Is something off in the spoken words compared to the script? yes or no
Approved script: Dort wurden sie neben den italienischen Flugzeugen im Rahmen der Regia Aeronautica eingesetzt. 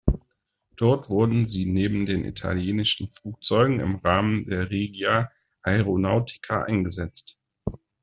no